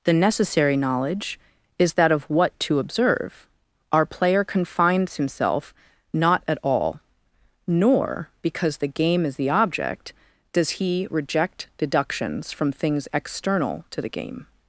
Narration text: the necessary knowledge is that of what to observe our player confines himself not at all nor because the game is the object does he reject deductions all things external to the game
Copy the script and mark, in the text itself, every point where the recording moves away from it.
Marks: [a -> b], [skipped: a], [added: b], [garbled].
the necessary knowledge is that of what to observe our player confines himself not at all nor because the game is the object does he reject deductions [all -> from] things external to the game